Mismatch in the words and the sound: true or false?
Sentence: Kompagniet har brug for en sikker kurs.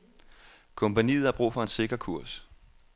false